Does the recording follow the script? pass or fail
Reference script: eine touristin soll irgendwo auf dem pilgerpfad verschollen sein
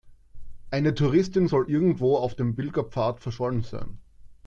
pass